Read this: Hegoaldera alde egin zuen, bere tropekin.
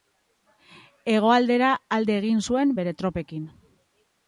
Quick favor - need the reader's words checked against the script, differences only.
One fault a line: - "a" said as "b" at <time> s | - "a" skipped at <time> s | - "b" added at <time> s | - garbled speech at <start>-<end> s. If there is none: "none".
none